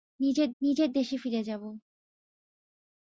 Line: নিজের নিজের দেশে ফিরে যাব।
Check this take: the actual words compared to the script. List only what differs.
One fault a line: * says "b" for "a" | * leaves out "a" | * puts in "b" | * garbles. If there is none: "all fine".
all fine